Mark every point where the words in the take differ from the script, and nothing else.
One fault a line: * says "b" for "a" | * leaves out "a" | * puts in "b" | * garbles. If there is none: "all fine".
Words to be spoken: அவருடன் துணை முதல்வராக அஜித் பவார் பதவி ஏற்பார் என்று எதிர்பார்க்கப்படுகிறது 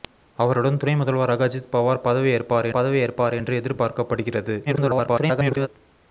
* puts in "பதவி ஏற்பார்"
* garbles